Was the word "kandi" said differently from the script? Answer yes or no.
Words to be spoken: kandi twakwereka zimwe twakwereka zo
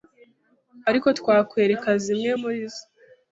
yes